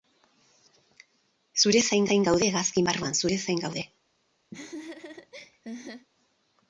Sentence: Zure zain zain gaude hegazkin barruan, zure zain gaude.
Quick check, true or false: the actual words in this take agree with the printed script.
true